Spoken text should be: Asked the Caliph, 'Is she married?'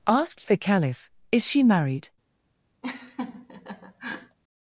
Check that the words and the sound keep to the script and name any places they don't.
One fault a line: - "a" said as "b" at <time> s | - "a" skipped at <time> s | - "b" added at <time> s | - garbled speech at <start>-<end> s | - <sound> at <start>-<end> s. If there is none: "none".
- laugh at 2.8-4.4 s